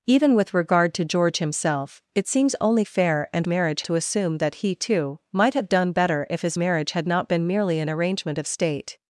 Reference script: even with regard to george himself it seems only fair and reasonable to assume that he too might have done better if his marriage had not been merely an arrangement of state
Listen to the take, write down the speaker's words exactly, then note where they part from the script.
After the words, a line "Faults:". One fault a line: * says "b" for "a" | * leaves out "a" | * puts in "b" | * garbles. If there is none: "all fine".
even with regard to george himself it seems only fair and marriage to assume that he too might have done better if his marriage had not been merely an arrangement of state
Faults:
* says "marriage" for "reasonable"